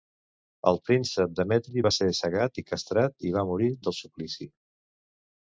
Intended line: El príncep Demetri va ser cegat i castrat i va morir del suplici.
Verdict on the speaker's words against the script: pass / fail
pass